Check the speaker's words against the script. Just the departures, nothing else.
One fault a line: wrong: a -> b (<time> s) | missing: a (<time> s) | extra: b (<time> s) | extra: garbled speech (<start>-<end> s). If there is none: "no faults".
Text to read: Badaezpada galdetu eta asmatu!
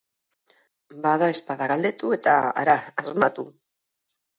extra: hara (2.6 s)